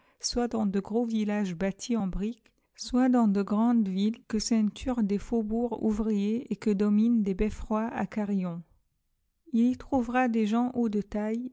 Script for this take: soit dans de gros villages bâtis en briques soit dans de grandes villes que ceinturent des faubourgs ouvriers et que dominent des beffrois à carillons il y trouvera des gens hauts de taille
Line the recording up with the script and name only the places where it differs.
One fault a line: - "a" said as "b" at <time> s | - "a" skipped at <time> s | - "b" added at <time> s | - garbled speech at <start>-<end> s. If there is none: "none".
none